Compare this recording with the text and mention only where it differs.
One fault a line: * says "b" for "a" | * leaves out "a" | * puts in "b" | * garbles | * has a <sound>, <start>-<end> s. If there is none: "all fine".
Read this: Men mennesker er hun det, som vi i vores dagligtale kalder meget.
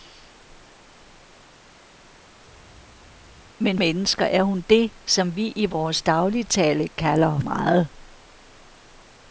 all fine